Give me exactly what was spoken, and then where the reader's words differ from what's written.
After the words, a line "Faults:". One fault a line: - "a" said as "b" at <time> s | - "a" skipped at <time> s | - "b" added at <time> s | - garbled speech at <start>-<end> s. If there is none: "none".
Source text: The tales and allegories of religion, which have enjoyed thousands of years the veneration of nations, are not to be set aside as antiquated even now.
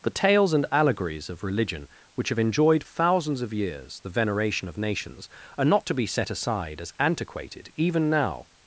The tales and allegories of religion, which have enjoyed thousands of years the veneration of nations, are not to be set aside as antiquated even now.
Faults:
none